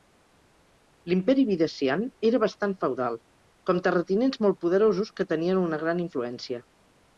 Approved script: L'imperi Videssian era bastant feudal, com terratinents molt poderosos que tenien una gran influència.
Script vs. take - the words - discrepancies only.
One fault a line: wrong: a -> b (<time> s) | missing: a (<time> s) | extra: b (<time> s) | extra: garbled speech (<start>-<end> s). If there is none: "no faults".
no faults